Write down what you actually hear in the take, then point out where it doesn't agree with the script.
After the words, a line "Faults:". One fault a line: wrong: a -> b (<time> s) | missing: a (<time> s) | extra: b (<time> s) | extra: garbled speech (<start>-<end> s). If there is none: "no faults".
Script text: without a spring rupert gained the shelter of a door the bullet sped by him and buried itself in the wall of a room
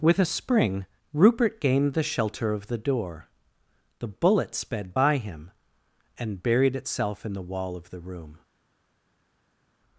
with a spring rupert gained the shelter of the door the bullet sped by him and buried itself in the wall of the room
Faults:
wrong: without -> with (0.0 s)
wrong: a -> the (2.6 s)
wrong: a -> the (7.9 s)